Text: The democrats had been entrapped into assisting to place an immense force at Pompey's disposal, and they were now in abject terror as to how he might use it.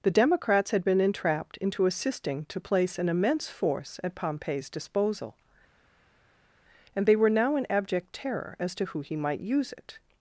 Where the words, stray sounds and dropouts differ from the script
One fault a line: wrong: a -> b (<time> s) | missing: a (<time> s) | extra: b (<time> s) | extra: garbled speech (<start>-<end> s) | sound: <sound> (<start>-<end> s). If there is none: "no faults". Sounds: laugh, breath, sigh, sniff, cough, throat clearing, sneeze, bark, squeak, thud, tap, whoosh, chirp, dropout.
wrong: how -> who (8.9 s)